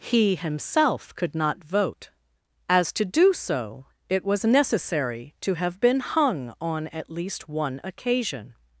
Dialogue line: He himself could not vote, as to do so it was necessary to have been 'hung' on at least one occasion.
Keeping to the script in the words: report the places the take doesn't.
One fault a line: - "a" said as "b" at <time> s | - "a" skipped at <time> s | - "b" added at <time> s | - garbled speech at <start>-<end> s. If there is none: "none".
none